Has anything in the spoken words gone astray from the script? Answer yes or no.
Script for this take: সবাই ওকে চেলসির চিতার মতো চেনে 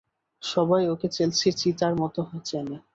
no